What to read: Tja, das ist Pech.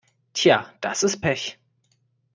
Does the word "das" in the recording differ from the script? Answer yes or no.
no